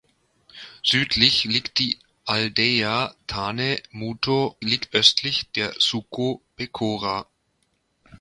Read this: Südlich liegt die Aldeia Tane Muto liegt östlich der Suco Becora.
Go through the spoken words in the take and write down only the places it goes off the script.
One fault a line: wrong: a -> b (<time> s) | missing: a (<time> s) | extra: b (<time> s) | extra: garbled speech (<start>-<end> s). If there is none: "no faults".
no faults